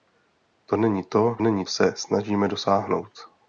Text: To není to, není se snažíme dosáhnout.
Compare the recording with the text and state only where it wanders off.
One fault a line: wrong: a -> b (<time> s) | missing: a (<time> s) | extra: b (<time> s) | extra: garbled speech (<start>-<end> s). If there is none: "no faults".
no faults